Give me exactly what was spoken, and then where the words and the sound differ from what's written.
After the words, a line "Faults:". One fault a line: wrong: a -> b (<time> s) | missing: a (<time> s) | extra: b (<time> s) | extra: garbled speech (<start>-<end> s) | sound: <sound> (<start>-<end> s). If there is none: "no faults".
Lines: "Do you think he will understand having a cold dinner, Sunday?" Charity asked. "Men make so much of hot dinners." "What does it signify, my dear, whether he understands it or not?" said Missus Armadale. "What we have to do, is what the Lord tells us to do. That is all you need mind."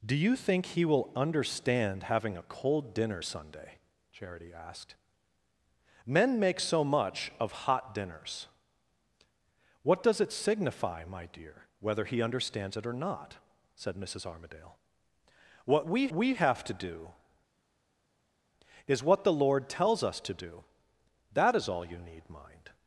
"Do you think he will understand having a cold dinner, Sunday?" Charity asked. "Men make so much of hot dinners." "What does it signify, my dear, whether he understands it or not?" said Missus Armadale. "What we we have to do, is what the Lord tells us to do. That is all you need mind."
Faults:
extra: we (16.1 s)